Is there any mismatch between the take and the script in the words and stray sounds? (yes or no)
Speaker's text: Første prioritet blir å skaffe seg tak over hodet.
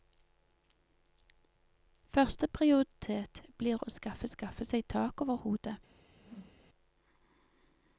yes